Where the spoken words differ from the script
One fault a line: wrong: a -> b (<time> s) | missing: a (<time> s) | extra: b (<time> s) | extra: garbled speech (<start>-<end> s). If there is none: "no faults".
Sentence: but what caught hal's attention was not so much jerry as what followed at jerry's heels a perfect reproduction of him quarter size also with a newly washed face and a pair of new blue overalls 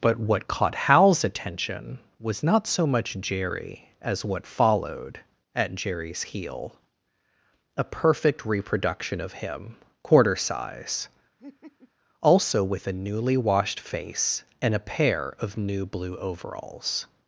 wrong: heels -> heel (6.2 s)